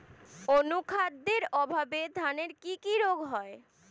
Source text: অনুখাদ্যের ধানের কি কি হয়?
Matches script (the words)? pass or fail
fail